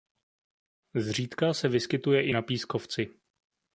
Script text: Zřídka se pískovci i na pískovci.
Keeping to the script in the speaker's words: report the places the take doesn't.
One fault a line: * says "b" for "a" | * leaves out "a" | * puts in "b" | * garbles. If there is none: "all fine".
* says "vyskytuje" for "pískovci"